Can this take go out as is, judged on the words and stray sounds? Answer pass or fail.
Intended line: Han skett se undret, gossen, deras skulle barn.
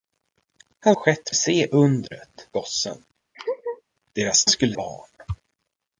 fail